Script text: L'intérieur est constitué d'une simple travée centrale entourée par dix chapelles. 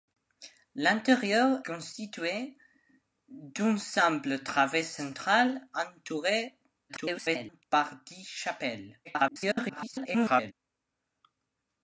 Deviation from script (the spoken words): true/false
true